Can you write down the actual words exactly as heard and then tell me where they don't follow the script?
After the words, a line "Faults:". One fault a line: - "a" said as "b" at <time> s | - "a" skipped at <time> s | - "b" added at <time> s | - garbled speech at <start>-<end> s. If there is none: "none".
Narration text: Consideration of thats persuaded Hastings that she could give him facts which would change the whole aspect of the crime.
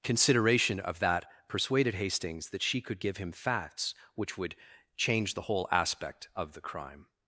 Consideration of that persuaded Hastings that she could give him facts which would change the whole aspect of the crime.
Faults:
- "thats" said as "that" at 1.0 s